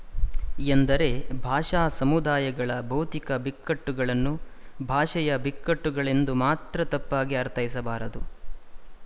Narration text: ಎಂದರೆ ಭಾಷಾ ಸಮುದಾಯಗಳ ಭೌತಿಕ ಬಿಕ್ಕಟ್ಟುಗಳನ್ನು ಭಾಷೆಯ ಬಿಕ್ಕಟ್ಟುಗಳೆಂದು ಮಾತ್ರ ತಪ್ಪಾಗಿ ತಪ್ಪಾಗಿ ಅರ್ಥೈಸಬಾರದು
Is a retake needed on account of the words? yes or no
yes